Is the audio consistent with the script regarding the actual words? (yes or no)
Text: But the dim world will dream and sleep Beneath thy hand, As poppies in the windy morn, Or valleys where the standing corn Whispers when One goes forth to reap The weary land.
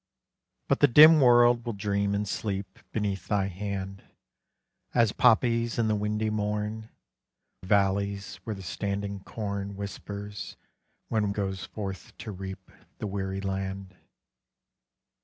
no